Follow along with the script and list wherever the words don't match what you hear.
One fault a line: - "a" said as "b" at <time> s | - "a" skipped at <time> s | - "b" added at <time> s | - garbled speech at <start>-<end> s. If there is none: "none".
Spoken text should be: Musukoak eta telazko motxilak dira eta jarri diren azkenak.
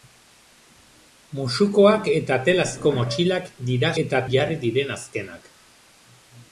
none